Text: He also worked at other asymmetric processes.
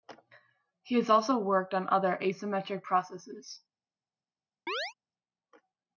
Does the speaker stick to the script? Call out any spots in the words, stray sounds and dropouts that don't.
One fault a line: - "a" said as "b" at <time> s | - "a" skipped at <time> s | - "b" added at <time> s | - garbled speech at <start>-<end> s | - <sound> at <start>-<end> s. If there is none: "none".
- "has" added at 0.9 s
- "at" said as "on" at 1.8 s
- chirp at 4.7-4.9 s